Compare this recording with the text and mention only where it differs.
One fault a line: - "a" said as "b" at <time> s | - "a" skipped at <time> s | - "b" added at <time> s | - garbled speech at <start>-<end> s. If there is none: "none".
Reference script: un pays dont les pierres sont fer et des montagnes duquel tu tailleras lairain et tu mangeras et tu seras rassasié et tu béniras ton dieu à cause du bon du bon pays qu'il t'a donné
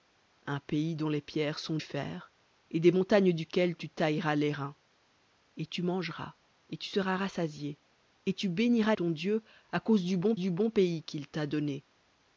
none